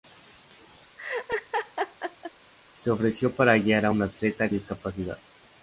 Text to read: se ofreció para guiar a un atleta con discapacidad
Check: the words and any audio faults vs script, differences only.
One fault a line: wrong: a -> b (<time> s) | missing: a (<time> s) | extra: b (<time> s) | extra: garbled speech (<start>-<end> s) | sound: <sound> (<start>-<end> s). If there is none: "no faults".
sound: laugh (1.0-2.3 s)
missing: con (4.5 s)